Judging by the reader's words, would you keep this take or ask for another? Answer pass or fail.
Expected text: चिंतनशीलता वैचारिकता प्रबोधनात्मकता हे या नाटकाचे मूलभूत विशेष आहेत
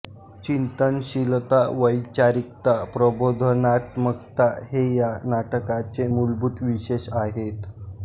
pass